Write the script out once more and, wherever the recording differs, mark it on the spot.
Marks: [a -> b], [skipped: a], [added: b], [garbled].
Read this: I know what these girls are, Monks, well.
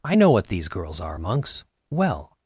I know what these girls are, Monks, well.